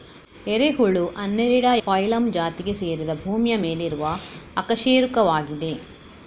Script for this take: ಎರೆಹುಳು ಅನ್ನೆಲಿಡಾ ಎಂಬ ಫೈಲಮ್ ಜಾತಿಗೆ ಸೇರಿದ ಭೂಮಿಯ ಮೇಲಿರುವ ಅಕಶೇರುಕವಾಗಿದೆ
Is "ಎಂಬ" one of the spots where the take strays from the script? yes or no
yes